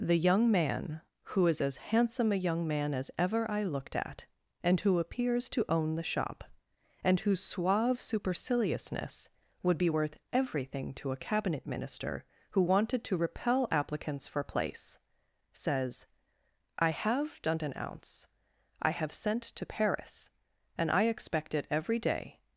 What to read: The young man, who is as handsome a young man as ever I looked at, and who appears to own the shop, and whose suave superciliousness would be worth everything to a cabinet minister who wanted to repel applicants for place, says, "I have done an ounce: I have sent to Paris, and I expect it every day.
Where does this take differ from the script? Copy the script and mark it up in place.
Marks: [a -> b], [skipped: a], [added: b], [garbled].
The young man, who is as handsome a young man as ever I looked at, and who appears to own the shop, and whose suave superciliousness would be worth everything to a cabinet minister who wanted to repel applicants for place, says, "I have done an ounce: I have sent to Paris, and I expect it every day.